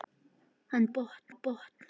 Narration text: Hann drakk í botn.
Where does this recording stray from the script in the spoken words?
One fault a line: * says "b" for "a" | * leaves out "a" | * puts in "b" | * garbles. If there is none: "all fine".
* says "botn" for "drakk"